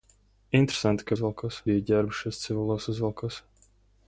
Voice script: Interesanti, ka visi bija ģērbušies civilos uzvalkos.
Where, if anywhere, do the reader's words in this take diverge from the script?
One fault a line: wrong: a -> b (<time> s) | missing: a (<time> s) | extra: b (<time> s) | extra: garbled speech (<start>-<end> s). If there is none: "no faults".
wrong: visi -> uzvalkos (1.1 s)